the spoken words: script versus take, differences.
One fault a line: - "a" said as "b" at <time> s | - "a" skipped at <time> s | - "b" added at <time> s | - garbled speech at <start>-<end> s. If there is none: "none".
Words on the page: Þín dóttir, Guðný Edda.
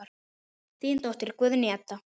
none